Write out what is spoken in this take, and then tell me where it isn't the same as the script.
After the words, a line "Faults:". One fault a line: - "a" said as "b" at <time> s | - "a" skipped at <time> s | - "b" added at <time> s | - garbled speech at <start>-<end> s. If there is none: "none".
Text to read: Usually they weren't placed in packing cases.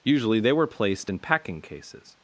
Usually they were placed in packing cases.
Faults:
- "weren't" said as "were" at 0.5 s